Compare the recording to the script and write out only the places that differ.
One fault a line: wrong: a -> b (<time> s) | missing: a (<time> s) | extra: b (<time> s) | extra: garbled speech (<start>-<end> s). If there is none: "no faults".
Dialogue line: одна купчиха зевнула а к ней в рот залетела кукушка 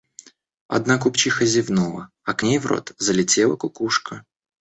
no faults